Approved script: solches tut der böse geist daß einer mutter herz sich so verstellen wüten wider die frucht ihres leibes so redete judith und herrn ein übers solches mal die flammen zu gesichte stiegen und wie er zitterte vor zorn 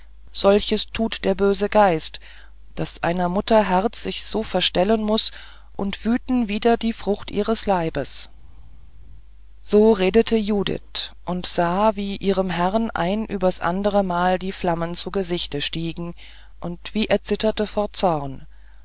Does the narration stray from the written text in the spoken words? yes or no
yes